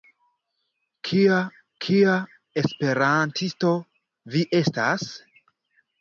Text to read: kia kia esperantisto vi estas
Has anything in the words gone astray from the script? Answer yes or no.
no